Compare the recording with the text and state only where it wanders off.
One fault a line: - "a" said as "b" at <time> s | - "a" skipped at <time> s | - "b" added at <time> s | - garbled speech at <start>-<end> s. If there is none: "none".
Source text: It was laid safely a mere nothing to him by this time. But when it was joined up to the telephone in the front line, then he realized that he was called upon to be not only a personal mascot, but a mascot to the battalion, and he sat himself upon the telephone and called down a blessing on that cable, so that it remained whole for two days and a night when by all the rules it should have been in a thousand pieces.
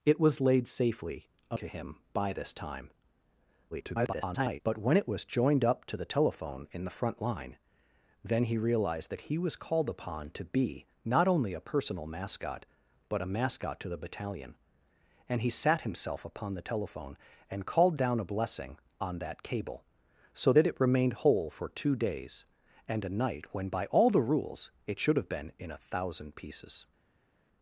- "mere nothing" skipped at 1.6 s
- garbled speech at 3.7-4.6 s